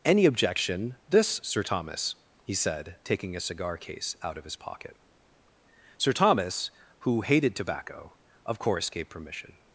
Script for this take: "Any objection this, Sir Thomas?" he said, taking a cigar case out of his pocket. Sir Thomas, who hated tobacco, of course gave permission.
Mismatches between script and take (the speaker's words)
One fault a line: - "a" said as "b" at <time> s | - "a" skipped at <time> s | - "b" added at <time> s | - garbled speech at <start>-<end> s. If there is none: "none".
none